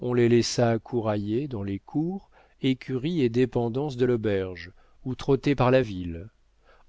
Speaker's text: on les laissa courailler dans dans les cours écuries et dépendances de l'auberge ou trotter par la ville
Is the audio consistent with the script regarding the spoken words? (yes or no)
no